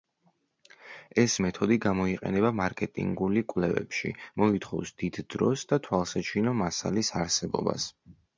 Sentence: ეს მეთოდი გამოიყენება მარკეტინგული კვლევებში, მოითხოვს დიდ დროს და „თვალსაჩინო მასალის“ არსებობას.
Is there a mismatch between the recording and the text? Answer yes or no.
no